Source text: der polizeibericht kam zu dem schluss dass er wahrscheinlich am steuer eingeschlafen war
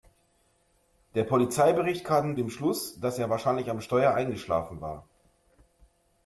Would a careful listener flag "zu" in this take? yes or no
yes